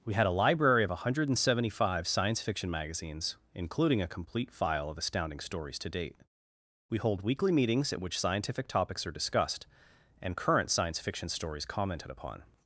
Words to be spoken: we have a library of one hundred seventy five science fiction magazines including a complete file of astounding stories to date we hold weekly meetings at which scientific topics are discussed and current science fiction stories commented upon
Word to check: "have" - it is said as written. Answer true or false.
false